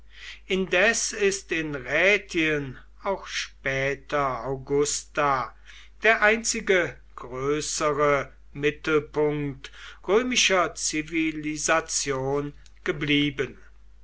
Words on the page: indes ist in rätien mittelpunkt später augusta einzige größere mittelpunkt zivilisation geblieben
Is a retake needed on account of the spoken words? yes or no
yes